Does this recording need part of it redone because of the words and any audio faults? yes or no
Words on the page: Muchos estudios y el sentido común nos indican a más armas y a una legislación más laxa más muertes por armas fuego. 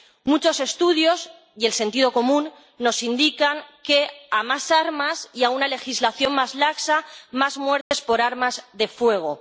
yes